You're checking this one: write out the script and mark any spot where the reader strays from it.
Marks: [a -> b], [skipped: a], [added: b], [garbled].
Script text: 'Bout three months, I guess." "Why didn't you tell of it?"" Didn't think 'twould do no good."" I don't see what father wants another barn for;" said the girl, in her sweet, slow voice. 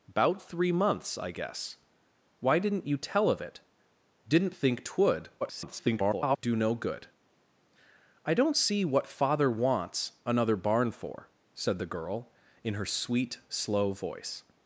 'Bout three months, I guess." "Why didn't you tell of it?"" Didn't think 'twould [garbled] do no good."" I don't see what father wants another barn for;" said the girl, in her sweet, slow voice.